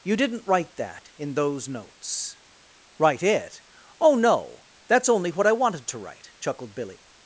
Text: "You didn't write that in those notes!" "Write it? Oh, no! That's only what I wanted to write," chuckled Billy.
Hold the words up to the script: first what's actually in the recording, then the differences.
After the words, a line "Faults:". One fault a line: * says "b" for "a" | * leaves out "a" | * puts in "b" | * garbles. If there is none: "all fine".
"You didn't write that in those notes!" "Write it? Oh, no! That's only what I wanted to write," chuckled Billy.
Faults:
all fine